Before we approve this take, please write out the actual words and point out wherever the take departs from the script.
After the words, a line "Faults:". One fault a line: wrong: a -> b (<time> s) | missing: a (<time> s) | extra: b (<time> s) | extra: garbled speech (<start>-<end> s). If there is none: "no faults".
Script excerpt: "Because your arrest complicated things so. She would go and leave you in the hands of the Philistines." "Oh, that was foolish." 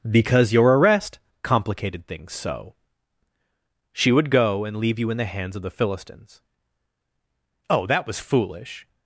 "Because your arrest complicated things so. She would go and leave you in the hands of the Philistines." "Oh, that was foolish."
Faults:
no faults